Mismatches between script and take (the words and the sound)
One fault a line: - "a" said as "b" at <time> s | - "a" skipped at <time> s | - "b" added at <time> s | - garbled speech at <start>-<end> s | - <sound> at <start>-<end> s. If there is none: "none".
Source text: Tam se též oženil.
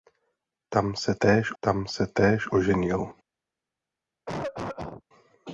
- "tam se též" added at 1.6 s
- cough at 4.3-5.0 s